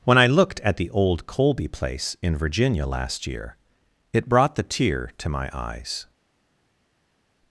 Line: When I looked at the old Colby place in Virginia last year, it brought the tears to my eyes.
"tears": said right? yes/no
no